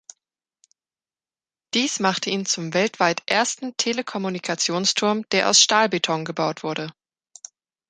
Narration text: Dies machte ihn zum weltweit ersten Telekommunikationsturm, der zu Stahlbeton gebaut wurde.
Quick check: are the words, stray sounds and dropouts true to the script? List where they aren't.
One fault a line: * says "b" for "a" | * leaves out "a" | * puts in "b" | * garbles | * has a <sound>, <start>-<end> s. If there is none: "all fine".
* says "aus" for "zu"